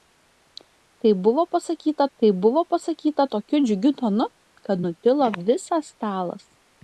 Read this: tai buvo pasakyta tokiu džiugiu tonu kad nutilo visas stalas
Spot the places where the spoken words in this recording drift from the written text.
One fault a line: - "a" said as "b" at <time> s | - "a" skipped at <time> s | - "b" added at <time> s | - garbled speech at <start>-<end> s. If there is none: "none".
- "tai buvo pasakyta" added at 2.2 s